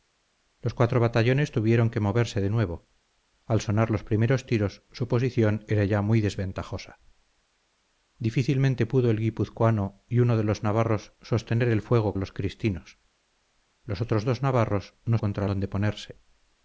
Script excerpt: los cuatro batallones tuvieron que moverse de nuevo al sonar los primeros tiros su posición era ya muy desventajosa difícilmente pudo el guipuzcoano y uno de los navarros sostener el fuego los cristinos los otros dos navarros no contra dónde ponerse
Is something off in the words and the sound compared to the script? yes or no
no